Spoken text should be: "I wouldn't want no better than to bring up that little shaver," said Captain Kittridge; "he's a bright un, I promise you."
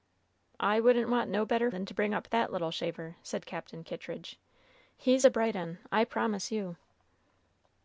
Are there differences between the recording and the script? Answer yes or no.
no